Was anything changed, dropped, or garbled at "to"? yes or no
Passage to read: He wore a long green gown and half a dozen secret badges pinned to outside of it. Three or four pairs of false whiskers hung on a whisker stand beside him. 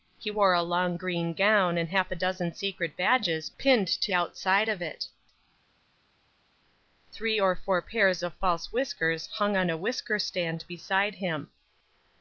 no